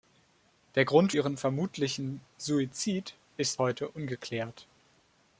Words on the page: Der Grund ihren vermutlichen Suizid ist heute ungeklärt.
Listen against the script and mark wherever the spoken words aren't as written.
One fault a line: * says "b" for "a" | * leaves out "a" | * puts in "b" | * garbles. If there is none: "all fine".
all fine